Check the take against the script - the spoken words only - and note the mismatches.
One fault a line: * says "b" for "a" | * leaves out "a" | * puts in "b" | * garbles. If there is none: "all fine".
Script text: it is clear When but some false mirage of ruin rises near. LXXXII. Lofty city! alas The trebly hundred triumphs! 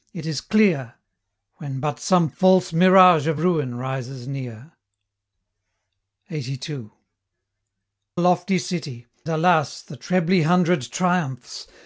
all fine